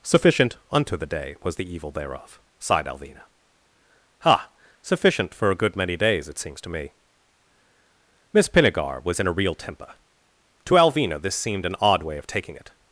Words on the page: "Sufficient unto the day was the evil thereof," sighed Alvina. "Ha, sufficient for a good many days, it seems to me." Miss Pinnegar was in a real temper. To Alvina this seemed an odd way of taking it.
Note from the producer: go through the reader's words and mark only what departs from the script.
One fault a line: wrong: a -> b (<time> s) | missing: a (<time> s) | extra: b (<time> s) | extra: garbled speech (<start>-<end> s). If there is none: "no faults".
no faults